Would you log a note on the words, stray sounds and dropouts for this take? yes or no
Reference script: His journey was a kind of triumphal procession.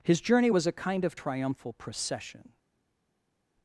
no